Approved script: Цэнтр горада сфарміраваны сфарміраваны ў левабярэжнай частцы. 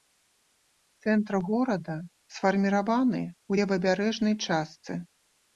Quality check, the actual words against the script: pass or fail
fail